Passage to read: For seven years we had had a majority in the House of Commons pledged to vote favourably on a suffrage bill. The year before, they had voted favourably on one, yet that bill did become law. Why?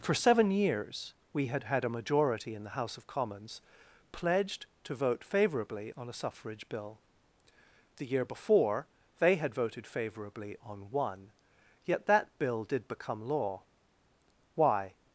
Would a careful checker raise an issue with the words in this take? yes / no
no